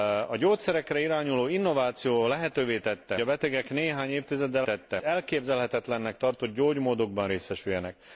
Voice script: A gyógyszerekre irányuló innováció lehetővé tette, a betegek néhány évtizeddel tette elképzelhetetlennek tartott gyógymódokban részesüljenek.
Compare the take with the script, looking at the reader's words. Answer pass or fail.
pass